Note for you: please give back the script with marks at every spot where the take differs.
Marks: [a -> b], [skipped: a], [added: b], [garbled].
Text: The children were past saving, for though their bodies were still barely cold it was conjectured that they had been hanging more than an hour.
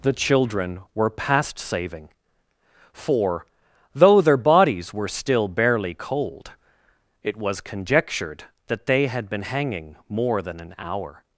The children were past saving, for though their bodies were still barely cold it was conjectured that they had been hanging more than an hour.